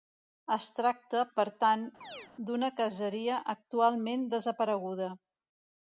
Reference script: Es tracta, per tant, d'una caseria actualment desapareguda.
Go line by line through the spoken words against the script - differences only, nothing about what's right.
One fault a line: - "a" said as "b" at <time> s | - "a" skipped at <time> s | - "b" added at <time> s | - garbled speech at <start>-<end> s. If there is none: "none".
none